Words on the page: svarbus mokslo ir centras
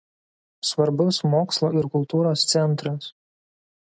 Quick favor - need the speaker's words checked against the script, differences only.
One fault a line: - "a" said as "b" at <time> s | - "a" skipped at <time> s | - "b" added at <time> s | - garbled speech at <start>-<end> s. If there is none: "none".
- "kultūros" added at 2.0 s